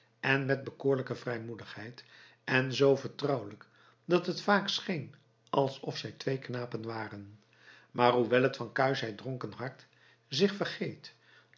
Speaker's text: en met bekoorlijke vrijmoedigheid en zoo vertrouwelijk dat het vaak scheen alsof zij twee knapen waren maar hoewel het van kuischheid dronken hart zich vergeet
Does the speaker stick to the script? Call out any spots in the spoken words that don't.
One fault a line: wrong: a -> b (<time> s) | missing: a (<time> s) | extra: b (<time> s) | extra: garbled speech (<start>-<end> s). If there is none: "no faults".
no faults